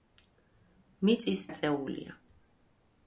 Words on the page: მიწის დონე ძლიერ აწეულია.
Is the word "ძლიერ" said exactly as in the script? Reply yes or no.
no